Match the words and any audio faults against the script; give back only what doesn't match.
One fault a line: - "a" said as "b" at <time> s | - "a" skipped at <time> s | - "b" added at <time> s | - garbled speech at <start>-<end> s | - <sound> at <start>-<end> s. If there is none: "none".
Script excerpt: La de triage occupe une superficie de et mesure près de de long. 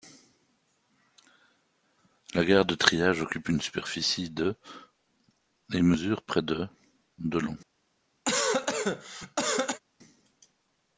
- "gare" added at 2.4 s
- cough at 8.2-9.8 s